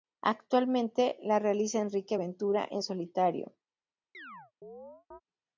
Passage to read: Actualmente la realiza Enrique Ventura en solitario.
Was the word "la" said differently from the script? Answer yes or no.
no